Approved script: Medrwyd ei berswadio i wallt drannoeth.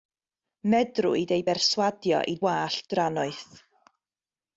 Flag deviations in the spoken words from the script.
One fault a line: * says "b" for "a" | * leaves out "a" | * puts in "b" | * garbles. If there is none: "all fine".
all fine